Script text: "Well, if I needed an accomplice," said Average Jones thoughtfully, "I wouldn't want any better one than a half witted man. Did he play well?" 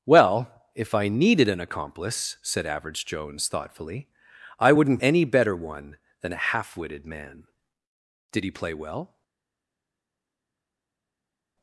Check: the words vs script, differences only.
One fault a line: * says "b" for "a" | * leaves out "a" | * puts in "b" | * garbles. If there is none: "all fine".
* leaves out "want"